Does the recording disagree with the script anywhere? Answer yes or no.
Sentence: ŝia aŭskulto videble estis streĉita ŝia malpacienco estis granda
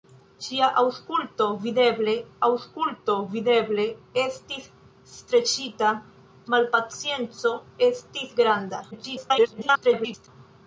yes